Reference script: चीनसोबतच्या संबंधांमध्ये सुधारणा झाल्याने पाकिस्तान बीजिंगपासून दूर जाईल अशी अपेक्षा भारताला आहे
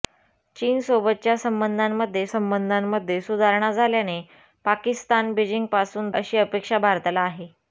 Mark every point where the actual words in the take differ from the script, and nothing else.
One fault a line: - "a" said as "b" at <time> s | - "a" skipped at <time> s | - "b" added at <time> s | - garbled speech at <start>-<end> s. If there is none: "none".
- "संबंधांमध्ये" added at 2.3 s
- "दूर जाईल" skipped at 6.1 s